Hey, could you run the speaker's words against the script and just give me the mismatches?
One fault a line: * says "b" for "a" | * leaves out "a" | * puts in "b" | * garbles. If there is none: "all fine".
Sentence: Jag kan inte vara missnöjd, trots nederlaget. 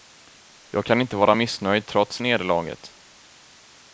all fine